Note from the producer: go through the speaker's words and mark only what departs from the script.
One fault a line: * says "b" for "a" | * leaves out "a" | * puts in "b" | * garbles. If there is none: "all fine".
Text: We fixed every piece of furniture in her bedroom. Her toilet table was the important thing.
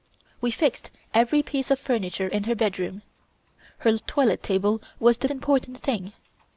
all fine